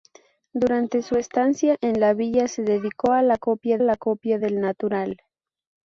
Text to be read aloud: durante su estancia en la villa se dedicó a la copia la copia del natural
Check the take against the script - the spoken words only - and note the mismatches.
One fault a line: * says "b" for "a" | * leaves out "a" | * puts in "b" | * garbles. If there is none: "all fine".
all fine